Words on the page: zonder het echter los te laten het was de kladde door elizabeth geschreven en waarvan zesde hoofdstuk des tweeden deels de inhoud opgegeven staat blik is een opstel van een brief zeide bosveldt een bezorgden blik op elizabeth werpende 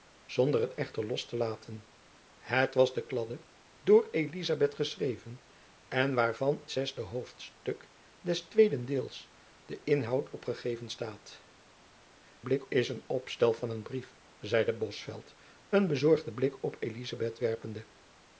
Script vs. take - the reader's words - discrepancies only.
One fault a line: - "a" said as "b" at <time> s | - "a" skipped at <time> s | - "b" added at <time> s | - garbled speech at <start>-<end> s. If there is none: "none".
none